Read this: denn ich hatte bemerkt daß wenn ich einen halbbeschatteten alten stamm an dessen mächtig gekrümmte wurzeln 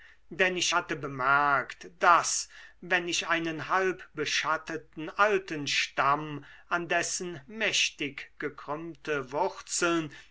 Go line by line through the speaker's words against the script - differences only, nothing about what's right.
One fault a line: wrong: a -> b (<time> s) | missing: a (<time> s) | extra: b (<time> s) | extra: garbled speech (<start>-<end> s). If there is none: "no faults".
no faults